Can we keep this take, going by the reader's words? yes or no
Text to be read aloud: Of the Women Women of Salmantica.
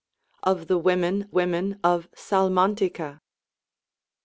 yes